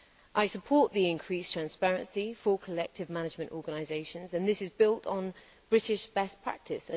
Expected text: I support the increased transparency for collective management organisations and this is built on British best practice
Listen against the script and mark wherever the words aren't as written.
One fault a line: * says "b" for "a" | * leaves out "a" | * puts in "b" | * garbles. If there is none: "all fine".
all fine